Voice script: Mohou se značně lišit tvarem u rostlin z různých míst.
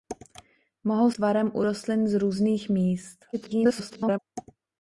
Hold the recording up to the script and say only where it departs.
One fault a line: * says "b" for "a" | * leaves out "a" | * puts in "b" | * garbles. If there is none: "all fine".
* leaves out "se značně lišit"
* garbles